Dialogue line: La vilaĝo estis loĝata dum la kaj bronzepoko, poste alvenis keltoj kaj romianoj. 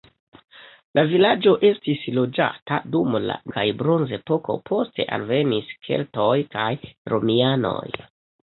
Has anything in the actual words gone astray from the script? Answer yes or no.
no